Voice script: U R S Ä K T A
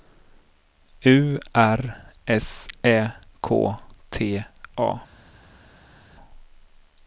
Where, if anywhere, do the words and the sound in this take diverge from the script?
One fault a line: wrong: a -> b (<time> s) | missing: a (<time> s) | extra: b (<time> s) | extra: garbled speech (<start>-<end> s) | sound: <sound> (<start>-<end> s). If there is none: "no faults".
no faults